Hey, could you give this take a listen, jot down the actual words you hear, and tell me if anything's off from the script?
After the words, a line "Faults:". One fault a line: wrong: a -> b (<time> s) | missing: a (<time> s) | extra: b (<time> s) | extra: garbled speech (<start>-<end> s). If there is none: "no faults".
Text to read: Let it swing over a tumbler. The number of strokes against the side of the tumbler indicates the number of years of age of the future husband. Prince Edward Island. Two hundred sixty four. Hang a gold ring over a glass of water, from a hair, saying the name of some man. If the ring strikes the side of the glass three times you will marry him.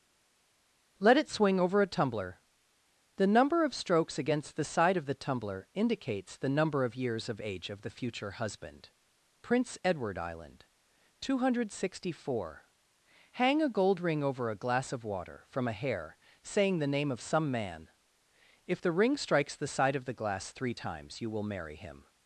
Let it swing over a tumbler. The number of strokes against the side of the tumbler indicates the number of years of age of the future husband. Prince Edward Island. Two hundred sixty four. Hang a gold ring over a glass of water, from a hair, saying the name of some man. If the ring strikes the side of the glass three times you will marry him.
Faults:
no faults